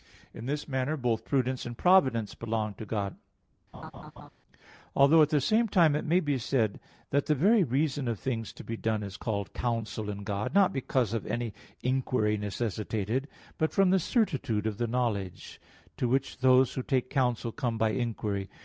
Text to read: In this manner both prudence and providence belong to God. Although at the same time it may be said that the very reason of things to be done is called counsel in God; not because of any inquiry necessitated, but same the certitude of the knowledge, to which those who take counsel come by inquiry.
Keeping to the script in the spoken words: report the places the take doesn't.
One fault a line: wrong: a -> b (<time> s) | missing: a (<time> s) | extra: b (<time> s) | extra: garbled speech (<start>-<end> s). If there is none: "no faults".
wrong: same -> from (13.7 s)